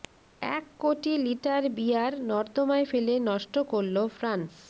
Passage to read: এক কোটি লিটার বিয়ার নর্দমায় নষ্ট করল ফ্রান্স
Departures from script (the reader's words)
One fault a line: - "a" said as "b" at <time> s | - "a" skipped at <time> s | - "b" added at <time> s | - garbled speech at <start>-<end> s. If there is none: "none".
- "ফেলে" added at 2.9 s